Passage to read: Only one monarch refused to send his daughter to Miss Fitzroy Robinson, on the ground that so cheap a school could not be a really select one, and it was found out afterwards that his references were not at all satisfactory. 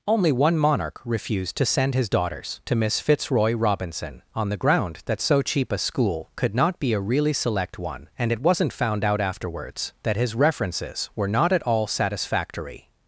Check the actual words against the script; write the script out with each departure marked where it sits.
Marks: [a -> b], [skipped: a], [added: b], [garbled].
Only one monarch refused to send his [daughter -> daughters] to Miss Fitzroy Robinson, on the ground that so cheap a school could not be a really select one, and it [was -> wasn't] found out afterwards that his references were not at all satisfactory.